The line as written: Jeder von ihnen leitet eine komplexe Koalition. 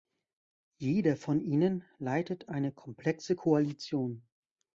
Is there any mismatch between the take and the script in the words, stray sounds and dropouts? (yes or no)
no